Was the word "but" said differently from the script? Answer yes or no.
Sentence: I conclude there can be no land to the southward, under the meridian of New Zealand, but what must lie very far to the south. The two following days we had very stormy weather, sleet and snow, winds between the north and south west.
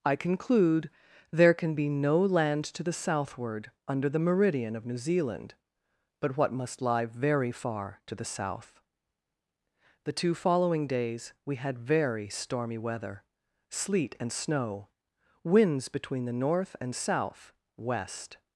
no